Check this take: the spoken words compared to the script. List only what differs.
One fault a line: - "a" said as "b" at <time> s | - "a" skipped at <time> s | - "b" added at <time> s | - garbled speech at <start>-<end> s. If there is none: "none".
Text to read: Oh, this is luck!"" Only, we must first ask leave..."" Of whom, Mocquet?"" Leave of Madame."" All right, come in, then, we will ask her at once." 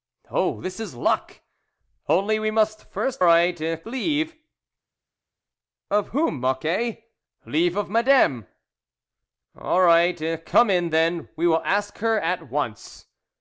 - "ask" said as "right" at 3.2 s